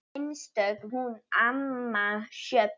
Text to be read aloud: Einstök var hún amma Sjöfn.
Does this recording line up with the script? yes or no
no